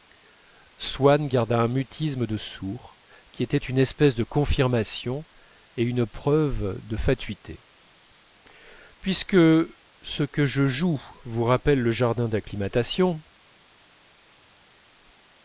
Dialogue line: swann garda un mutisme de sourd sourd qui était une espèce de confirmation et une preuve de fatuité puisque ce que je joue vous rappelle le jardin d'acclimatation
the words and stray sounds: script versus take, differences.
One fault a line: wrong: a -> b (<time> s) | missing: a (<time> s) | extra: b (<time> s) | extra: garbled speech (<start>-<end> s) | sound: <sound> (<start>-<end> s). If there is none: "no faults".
missing: sourd (3.0 s)